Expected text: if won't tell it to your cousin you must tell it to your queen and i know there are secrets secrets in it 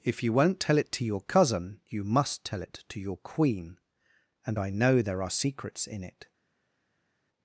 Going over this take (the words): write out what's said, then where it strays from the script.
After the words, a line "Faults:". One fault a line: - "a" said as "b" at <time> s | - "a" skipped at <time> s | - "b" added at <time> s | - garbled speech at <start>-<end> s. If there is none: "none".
if you won't tell it to your cousin you must tell it to your queen and i know there are secrets in it
Faults:
- "you" added at 0.2 s
- "secrets" skipped at 5.9 s